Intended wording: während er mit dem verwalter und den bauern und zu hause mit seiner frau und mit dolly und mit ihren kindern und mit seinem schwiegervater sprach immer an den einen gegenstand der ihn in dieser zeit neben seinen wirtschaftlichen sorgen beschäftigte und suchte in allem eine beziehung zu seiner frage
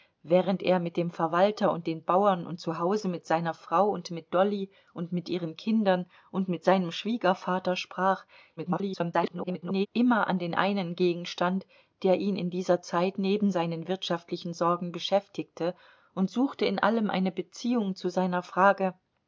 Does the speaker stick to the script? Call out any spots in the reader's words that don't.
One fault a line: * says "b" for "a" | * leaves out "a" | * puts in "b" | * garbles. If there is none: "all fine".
* garbles